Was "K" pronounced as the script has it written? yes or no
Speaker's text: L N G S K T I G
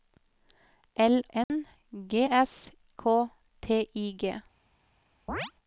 yes